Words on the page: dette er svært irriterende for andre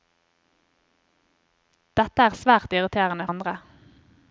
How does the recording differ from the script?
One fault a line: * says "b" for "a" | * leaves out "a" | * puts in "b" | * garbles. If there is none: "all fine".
* leaves out "for"